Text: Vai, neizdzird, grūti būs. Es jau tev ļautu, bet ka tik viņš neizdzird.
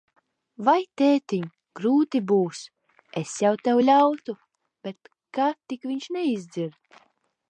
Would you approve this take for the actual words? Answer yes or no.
no